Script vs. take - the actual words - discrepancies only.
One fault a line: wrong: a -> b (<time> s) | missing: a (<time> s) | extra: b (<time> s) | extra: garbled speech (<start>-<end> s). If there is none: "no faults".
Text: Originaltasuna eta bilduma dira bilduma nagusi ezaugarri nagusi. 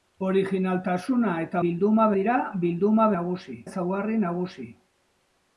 no faults